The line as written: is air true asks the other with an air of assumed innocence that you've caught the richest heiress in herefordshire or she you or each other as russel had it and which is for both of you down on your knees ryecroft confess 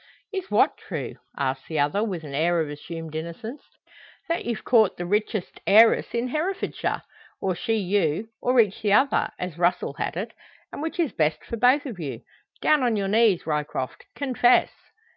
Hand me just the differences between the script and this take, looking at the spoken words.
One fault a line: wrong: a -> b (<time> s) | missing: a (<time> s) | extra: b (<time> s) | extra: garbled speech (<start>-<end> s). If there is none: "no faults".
wrong: air -> what (0.5 s)
extra: the (8.8 s)
extra: best (11.1 s)